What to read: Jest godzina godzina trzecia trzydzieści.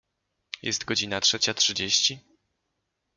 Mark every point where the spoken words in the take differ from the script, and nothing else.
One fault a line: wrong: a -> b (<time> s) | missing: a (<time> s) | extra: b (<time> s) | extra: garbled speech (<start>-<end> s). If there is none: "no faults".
missing: godzina (1.2 s)